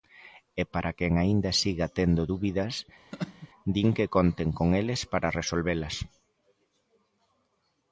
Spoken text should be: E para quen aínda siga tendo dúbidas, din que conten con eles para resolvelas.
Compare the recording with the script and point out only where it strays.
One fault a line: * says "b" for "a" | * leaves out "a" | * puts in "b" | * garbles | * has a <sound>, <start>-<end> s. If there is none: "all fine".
* has a laugh, 3.1-3.5 s